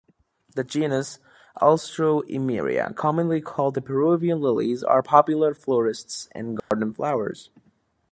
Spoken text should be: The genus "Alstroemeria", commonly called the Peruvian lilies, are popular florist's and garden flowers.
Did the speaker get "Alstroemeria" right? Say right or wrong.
right